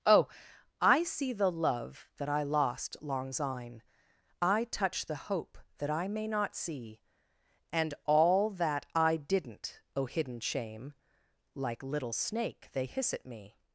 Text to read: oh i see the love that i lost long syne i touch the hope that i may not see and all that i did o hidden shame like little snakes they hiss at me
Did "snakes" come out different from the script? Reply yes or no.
yes